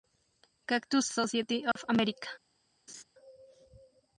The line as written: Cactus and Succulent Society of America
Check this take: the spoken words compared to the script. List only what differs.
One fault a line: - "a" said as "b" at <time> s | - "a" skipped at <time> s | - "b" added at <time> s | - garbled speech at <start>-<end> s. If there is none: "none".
- "and Succulent" skipped at 1.1 s